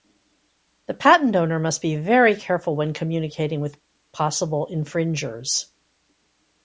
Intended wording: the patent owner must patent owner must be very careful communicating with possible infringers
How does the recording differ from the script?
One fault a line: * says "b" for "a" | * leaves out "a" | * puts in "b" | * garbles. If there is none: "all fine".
* leaves out "patent owner must"
* puts in "when"